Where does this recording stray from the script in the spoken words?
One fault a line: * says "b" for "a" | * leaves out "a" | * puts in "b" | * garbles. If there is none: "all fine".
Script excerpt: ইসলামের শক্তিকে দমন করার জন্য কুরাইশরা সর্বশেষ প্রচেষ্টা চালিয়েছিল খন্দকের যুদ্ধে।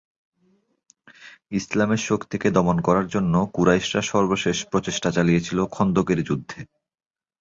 all fine